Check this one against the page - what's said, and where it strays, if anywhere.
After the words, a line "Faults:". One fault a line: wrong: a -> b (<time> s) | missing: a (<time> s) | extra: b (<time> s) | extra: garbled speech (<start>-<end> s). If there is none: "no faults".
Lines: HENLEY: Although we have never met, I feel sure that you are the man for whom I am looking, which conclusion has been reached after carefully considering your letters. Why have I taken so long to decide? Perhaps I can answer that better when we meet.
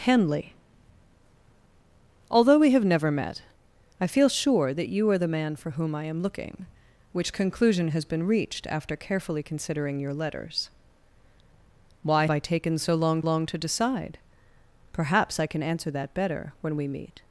HENLEY: Although we have never met, I feel sure that you are the man for whom I am looking, which conclusion has been reached after carefully considering your letters. Why I taken so long long to decide? Perhaps I can answer that better when we meet.
Faults:
missing: have (12.2 s)
extra: long (13.2 s)